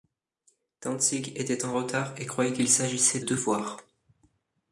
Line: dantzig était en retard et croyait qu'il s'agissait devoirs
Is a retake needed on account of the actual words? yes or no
no